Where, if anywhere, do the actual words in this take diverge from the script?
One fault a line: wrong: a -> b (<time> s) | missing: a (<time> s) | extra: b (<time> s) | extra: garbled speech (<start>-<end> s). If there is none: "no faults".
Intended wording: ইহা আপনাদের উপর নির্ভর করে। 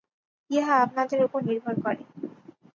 no faults